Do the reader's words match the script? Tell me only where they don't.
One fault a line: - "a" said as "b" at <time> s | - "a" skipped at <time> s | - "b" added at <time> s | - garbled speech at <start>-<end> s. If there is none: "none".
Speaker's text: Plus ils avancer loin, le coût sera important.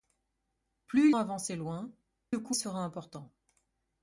none